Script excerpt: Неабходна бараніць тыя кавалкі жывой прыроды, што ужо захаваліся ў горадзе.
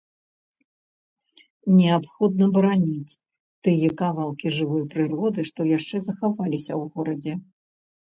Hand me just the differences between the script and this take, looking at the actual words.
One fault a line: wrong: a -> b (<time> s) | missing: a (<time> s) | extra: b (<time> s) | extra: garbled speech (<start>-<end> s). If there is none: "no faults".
wrong: ужо -> яшчэ (5.8 s)